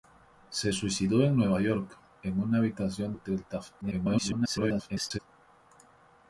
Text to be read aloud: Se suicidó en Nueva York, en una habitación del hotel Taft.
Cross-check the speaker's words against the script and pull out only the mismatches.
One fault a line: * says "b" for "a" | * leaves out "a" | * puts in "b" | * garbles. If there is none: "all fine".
* leaves out "del"
* garbles